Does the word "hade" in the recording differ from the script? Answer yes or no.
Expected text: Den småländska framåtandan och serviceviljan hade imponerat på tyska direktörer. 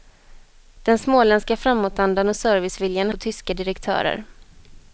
yes